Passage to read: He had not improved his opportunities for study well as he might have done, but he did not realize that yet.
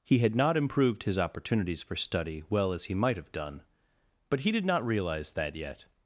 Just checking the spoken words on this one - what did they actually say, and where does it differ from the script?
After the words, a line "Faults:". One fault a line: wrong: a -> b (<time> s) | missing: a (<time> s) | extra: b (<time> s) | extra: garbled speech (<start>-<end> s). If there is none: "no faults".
He had not improved his opportunities for study well as he might have done, but he did not realize that yet.
Faults:
no faults